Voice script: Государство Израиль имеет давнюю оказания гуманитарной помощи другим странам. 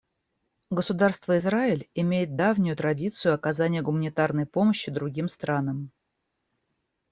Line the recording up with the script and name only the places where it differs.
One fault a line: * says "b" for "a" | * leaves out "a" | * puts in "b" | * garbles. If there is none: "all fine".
* puts in "традицию"